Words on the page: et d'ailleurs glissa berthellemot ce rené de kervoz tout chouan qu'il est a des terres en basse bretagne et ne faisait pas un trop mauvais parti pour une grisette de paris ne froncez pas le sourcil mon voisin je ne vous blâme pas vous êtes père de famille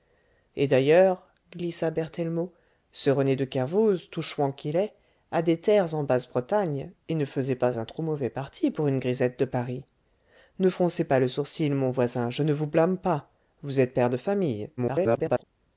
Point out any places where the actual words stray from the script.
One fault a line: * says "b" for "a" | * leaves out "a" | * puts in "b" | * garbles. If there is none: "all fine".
* garbles